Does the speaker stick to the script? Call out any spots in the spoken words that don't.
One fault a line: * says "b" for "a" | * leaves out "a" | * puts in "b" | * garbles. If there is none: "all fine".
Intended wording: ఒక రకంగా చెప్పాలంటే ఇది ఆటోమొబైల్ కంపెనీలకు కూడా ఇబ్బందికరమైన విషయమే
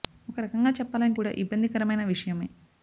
* leaves out "ఇది ఆటోమొబైల్ కంపెనీలకు"